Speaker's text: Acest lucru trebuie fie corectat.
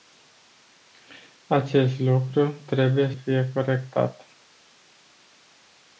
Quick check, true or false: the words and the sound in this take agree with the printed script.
true